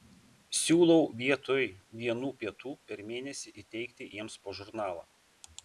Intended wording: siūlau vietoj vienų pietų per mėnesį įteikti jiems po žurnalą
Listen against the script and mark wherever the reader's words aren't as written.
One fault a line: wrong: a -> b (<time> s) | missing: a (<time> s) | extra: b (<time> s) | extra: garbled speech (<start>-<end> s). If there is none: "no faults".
no faults